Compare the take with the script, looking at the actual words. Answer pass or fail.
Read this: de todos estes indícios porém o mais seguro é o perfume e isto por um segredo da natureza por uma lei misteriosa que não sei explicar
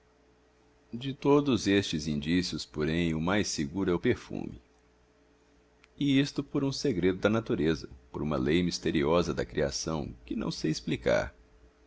fail